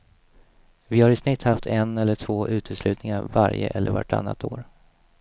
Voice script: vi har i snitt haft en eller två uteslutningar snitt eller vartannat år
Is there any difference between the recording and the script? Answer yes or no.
yes